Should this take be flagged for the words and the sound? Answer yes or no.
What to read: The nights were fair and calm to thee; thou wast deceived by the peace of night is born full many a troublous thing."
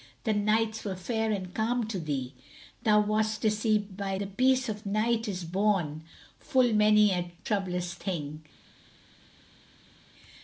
no